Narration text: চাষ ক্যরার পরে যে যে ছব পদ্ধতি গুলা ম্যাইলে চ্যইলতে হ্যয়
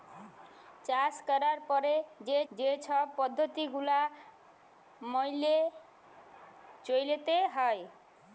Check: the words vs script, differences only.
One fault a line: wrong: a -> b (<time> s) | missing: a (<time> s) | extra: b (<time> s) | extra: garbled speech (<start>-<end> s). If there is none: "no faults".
no faults